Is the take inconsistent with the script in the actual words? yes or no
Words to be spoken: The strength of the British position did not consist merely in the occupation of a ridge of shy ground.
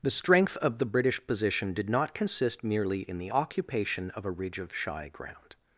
no